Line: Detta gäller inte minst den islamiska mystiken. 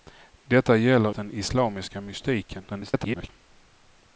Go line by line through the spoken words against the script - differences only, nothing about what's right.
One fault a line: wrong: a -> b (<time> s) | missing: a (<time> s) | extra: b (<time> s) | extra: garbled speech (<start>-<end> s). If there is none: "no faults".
missing: inte minst (1.1 s)
extra: garbled speech (2.7-3.3 s)